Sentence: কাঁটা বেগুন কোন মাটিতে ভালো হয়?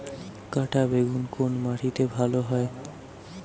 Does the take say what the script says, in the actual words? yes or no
yes